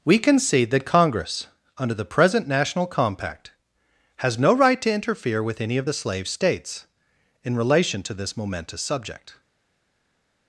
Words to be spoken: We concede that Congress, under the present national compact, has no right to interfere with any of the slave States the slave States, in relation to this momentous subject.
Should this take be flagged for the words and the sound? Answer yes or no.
yes